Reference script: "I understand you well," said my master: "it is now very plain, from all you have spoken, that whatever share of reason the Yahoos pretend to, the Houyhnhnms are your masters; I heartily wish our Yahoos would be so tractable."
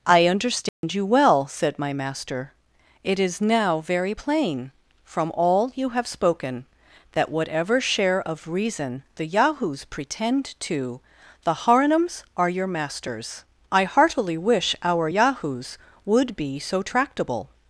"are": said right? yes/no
yes